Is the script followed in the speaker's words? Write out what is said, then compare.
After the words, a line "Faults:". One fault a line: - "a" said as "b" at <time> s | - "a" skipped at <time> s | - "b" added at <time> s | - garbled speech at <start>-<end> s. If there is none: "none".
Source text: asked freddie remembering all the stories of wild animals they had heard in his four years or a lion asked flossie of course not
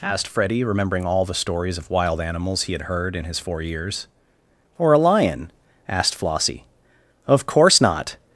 asked freddie remembering all the stories of wild animals he had heard in his four years or a lion asked flossie of course not
Faults:
- "they" said as "he" at 2.6 s